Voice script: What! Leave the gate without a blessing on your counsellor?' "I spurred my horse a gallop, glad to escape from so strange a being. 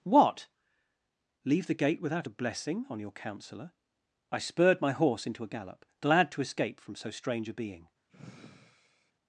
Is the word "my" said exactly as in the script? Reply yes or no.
yes